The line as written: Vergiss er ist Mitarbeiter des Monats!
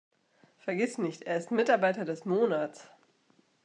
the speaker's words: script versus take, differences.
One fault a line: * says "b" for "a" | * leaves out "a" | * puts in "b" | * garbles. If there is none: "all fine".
* puts in "nicht"